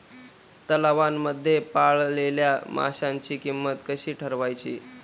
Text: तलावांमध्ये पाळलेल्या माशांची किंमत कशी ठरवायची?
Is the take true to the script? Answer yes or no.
yes